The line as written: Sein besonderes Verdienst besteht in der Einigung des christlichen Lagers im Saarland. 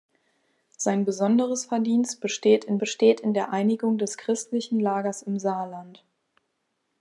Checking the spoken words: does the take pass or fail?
fail